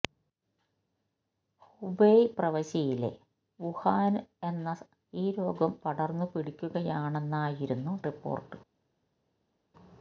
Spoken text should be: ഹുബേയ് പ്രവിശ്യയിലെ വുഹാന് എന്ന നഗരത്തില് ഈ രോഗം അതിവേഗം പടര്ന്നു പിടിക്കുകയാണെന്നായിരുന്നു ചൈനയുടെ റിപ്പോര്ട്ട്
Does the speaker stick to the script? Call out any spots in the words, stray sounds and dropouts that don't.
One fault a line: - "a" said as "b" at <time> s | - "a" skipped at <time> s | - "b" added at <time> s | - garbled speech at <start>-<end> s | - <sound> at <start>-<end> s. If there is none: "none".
- "നഗരത്തില്" skipped at 4.7 s
- "അതിവേഗം" skipped at 5.7 s
- "ചൈനയുടെ" skipped at 7.9 s